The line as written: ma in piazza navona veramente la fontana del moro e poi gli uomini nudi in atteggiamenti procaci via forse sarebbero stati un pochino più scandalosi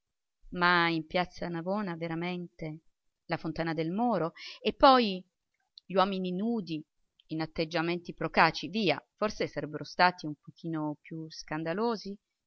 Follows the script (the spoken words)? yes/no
yes